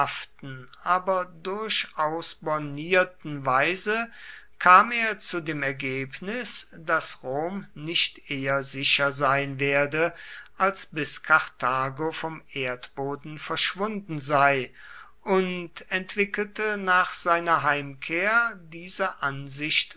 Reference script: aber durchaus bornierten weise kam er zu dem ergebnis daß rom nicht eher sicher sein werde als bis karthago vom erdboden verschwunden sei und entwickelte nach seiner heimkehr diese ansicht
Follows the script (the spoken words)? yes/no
yes